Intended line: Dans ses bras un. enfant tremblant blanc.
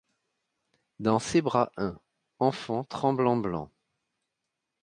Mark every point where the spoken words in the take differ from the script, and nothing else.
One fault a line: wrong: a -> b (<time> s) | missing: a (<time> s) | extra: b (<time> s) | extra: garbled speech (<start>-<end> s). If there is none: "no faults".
no faults